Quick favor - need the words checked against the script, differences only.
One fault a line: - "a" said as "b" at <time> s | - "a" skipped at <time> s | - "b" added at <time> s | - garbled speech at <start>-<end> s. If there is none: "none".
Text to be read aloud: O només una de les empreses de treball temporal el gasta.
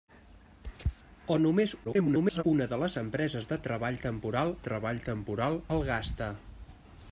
- garbled speech at 1.8-2.4 s
- "treball temporal" added at 4.7 s